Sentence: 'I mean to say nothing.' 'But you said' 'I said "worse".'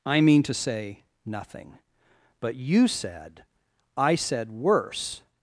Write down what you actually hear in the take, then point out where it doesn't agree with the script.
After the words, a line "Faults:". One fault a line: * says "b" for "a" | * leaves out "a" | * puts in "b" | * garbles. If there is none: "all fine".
'I mean to say nothing.' 'But you said' 'I said "worse".'
Faults:
all fine